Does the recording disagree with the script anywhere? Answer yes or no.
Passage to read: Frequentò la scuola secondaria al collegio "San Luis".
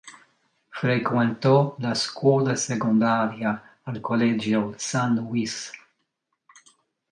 no